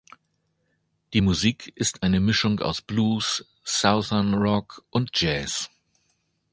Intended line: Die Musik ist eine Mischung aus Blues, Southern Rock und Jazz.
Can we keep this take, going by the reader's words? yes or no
yes